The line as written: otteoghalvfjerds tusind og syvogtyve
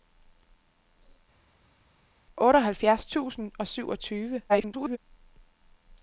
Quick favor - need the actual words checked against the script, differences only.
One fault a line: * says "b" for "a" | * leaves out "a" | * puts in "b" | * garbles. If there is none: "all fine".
* garbles